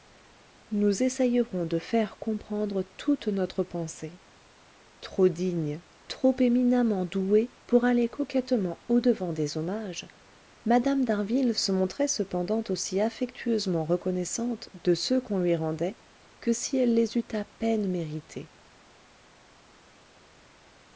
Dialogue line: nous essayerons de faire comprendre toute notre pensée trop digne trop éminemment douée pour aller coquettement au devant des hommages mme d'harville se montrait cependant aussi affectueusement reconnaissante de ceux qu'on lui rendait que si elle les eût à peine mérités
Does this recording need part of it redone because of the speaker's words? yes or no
no